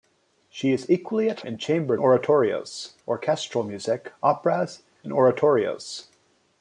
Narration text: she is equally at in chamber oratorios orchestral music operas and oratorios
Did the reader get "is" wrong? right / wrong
right